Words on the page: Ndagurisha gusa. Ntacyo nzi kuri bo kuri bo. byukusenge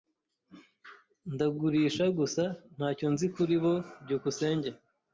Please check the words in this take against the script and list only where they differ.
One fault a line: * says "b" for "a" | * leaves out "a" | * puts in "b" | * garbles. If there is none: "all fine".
* leaves out "kuri bo"